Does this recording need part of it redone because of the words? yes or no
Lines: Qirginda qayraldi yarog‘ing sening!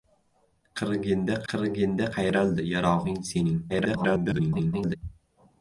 yes